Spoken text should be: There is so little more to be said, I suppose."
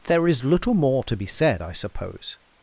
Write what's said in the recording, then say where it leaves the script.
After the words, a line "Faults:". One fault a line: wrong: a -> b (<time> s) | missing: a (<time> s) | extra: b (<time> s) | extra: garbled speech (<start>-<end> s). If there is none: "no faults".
There is little more to be said, I suppose."
Faults:
missing: so (0.4 s)